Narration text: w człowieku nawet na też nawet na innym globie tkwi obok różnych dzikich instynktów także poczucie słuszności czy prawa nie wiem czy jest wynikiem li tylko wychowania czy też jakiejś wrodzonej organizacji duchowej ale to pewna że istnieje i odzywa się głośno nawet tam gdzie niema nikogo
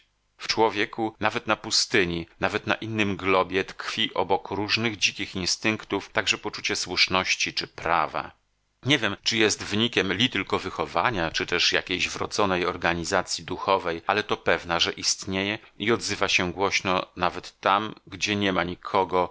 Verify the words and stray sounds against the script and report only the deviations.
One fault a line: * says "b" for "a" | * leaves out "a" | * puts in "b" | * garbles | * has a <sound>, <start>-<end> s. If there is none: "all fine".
* says "pustyni" for "też"